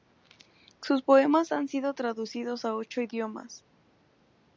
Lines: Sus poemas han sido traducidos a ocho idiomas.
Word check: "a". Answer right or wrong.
right